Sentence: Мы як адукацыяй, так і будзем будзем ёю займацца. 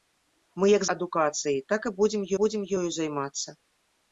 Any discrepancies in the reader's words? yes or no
no